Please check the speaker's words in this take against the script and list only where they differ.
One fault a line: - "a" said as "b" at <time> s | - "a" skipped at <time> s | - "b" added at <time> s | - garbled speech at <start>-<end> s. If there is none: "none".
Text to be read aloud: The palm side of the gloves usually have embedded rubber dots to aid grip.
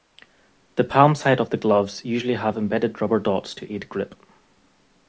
none